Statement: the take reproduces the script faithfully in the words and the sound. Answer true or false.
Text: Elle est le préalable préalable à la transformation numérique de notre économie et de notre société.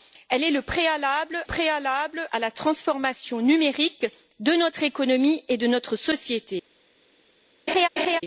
false